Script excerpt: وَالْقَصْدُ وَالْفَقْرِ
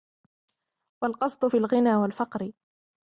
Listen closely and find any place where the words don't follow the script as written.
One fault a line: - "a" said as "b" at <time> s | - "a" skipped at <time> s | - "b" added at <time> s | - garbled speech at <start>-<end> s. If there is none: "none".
- "فِي الْغِنَى" added at 1.4 s